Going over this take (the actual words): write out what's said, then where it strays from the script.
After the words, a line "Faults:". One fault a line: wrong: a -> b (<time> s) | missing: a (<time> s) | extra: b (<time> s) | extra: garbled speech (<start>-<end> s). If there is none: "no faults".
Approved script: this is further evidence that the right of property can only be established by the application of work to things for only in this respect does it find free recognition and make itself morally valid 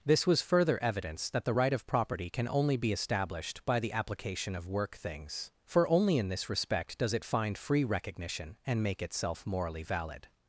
this was further evidence that the right of property can only be established by the application of work things for only in this respect does it find free recognition and make itself morally valid
Faults:
wrong: is -> was (0.2 s)
missing: to (5.0 s)